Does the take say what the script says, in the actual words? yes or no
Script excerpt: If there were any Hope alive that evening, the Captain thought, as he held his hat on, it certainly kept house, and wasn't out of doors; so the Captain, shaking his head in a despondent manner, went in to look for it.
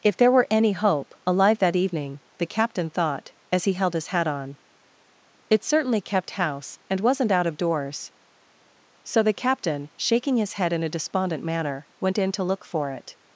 yes